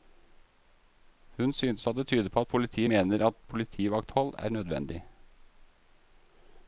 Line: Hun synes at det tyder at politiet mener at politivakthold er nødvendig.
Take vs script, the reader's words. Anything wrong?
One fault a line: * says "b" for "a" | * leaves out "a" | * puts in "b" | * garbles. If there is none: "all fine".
* puts in "på"